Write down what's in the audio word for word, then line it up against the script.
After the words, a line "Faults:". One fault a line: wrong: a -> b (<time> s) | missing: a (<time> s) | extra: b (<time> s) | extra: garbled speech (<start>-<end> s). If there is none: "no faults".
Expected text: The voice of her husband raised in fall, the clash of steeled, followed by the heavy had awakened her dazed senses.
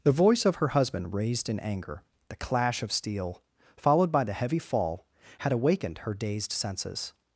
The voice of her husband raised in anger, the clash of steel, followed by the heavy fall, had awakened her dazed senses.
Faults:
wrong: fall -> anger (1.6 s)
wrong: steeled -> steel (2.9 s)
extra: fall (4.6 s)